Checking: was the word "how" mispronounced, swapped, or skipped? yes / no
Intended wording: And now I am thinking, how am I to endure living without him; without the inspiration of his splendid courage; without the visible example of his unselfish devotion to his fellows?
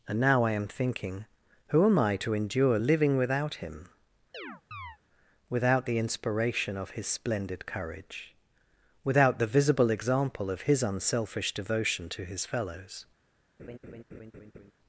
yes